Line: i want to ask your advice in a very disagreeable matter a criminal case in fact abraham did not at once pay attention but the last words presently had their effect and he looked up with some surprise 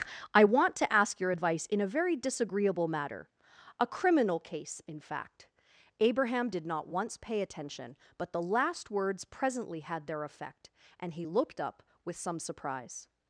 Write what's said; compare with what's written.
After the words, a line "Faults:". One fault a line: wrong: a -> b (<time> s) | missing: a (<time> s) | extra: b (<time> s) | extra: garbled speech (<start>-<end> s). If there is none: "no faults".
i want to ask your advice in a very disagreeable matter a criminal case in fact abraham did not once pay attention but the last words presently had their effect and he looked up with some surprise
Faults:
missing: at (6.9 s)